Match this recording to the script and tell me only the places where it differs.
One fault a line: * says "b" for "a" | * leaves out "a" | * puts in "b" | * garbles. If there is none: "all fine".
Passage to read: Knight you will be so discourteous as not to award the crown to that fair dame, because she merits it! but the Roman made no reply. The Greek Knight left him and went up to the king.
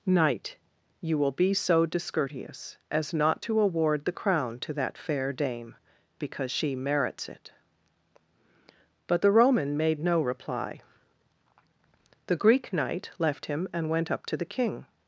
all fine